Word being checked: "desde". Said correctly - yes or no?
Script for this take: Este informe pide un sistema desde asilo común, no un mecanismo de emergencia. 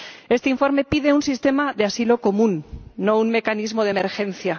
no